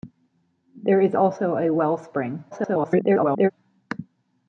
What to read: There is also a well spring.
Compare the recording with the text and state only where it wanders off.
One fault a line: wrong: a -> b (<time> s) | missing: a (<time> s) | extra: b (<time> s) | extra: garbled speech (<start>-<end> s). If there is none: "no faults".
extra: garbled speech (2.5-3.5 s)